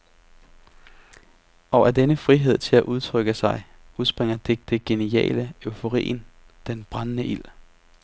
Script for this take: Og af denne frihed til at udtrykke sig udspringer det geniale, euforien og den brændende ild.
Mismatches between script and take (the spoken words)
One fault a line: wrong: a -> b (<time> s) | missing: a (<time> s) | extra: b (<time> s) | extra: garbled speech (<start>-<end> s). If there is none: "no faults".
extra: det (4.6 s)
missing: og (6.3 s)